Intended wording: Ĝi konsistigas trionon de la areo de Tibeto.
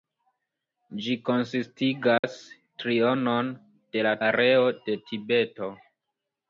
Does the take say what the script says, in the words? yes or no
yes